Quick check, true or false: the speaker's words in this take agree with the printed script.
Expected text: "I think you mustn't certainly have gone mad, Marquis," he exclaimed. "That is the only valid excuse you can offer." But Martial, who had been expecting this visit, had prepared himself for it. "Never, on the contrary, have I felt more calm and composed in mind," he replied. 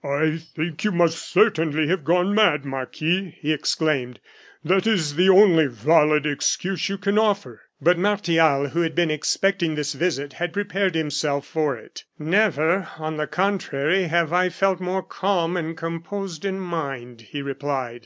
false